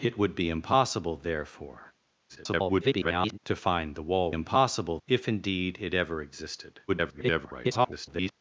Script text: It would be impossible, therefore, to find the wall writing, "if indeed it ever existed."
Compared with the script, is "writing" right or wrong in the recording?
wrong